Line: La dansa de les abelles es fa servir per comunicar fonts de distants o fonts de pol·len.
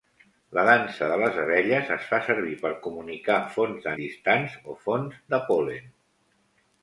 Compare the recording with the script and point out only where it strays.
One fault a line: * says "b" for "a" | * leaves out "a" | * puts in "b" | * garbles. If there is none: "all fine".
all fine